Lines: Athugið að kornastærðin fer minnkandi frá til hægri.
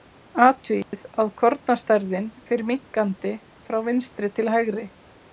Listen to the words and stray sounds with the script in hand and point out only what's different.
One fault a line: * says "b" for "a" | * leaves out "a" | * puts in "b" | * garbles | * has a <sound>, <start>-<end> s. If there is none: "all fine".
* has a dropout, 0.8-0.9 s
* puts in "vinstri"